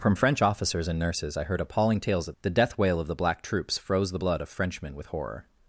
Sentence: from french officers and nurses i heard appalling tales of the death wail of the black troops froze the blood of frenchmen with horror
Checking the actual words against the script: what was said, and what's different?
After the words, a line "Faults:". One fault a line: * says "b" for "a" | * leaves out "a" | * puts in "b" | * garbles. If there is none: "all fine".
from french officers and nurses i heard appalling tales of the death wail of the black troops froze the blood of frenchmen with horror
Faults:
all fine